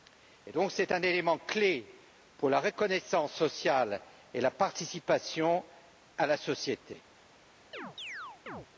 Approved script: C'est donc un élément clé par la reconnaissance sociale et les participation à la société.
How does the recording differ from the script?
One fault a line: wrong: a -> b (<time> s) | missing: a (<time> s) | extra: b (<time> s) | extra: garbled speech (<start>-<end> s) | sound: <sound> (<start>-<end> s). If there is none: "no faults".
wrong: par -> pour (2.4 s)
wrong: les -> la (4.4 s)
sound: chirp (7.7-8.7 s)